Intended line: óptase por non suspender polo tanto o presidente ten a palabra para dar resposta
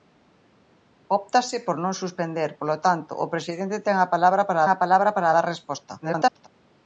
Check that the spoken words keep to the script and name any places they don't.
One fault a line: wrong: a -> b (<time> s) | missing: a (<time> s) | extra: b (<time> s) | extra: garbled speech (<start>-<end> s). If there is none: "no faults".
extra: a palabra para (4.7 s)
extra: garbled speech (6.0-6.5 s)